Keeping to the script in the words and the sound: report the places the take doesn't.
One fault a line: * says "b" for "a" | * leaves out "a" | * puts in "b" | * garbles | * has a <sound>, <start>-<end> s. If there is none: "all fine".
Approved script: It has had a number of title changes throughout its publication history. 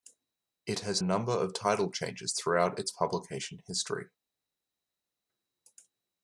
* leaves out "had"